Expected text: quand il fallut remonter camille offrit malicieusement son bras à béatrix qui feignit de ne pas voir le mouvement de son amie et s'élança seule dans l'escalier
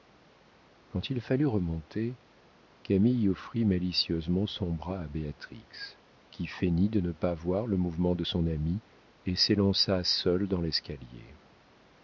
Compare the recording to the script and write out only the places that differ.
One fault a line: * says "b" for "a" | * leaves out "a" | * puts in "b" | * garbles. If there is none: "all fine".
all fine